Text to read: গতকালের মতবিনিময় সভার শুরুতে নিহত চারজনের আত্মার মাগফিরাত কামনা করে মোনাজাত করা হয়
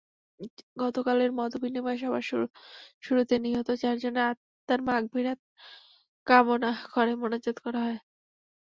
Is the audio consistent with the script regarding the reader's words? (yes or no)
yes